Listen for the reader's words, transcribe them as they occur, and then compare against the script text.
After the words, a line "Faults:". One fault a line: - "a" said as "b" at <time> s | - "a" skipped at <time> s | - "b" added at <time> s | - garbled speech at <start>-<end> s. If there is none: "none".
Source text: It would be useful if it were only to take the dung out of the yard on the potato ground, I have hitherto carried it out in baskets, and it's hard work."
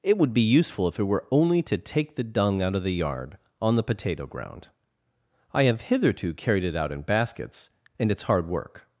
It would be useful if it were only to take the dung out of the yard on the potato ground, I have hitherto carried it out in baskets, and it's hard work."
Faults:
none